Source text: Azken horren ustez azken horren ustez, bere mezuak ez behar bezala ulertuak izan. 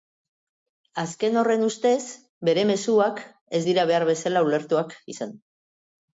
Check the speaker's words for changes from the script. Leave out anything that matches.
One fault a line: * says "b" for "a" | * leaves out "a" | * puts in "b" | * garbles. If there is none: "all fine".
* leaves out "azken horren ustez"
* puts in "dira"